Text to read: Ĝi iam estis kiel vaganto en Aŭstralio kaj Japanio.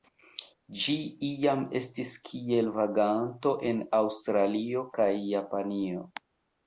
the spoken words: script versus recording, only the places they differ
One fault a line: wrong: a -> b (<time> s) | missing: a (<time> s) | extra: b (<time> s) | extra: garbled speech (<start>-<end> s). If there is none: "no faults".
no faults